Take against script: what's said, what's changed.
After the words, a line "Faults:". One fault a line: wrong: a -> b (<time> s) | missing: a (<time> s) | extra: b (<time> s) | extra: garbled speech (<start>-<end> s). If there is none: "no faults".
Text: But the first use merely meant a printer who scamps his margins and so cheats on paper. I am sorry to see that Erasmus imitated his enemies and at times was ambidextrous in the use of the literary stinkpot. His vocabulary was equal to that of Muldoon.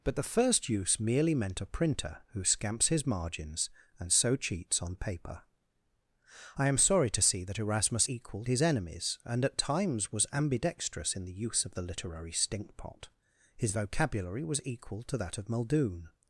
But the first use merely meant a printer who scamps his margins and so cheats on paper. I am sorry to see that Erasmus equal his enemies and at times was ambidextrous in the use of the literary stinkpot. His vocabulary was equal to that of Muldoon.
Faults:
wrong: imitated -> equal (8.1 s)